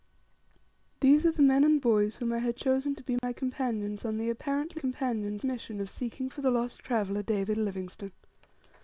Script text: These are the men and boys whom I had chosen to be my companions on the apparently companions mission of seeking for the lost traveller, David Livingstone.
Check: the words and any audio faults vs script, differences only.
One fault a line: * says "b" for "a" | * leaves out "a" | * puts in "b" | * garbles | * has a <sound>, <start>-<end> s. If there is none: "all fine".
* has a dropout, 3.2-3.2 s